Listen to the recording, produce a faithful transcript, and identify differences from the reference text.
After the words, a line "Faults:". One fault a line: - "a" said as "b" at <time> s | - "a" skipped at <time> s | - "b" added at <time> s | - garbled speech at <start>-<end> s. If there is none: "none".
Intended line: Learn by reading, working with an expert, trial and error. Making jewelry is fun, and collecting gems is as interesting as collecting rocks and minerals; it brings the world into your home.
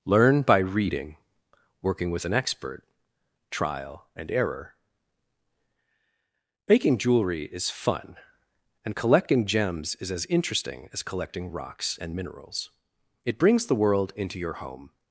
Learn by reading, working with an expert, trial and error. Making jewelry is fun, and collecting gems is as interesting as collecting rocks and minerals; it brings the world into your home.
Faults:
none